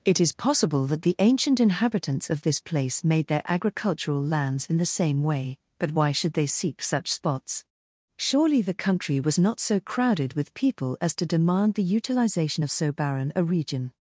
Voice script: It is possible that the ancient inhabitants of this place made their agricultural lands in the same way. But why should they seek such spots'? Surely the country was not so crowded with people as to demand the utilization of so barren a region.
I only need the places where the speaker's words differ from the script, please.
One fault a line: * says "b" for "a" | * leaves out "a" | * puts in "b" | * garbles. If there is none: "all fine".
all fine